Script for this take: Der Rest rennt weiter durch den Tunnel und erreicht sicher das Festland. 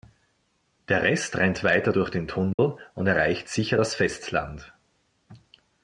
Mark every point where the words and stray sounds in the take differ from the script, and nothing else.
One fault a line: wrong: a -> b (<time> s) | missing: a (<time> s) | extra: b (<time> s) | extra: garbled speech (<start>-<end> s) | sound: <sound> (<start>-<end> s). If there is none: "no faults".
sound: dropout (2.5-2.6 s)